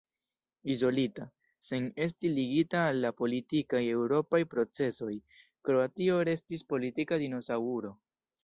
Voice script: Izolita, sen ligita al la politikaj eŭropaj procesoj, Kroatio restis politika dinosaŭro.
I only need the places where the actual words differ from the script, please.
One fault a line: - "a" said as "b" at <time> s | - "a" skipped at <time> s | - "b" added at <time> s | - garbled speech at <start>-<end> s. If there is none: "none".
- "esti" added at 2.1 s